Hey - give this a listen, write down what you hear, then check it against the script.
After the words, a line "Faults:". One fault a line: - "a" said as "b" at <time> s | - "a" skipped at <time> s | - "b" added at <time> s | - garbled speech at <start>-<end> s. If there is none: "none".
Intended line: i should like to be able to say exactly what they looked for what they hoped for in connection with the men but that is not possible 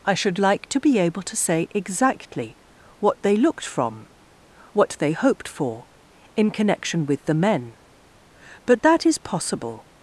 i should like to be able to say exactly what they looked from what they hoped for in connection with the men but that is possible
Faults:
- "for" said as "from" at 3.6 s
- "not" skipped at 9.2 s